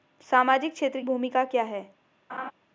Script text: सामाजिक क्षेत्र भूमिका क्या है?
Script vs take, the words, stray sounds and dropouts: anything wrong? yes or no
yes